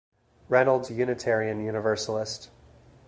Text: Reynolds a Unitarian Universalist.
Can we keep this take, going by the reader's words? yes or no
yes